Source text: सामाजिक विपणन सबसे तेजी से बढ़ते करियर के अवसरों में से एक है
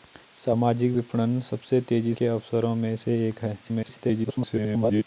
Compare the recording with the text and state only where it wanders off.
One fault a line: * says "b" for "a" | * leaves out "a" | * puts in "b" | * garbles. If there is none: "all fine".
* leaves out "से बढ़ते करियर"
* garbles